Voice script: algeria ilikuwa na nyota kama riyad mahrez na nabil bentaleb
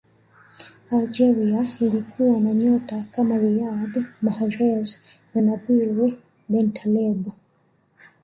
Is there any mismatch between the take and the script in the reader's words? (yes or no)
no